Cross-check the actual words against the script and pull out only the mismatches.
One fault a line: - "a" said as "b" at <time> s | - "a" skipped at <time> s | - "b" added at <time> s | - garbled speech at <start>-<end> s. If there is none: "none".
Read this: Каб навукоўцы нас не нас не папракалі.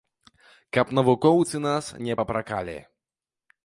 - "нас не" skipped at 2.2 s